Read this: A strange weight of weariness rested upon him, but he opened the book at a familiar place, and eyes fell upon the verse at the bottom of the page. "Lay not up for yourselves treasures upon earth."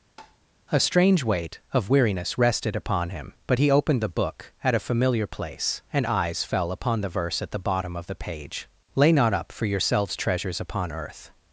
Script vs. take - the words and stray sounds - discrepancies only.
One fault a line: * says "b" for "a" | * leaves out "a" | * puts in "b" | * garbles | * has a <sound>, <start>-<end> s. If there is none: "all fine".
* has a tap, 0.2-0.4 s